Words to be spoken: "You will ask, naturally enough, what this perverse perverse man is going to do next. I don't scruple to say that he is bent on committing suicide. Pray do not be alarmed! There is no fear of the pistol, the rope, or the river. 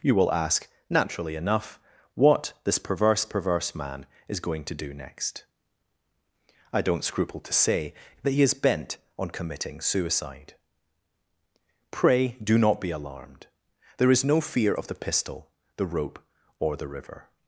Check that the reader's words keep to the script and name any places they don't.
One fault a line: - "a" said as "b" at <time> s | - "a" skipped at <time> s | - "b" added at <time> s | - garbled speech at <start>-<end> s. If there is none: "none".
none